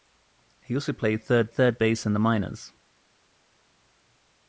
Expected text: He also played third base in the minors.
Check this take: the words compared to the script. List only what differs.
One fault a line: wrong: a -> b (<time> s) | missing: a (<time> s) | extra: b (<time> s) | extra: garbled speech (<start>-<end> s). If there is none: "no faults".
extra: third (1.5 s)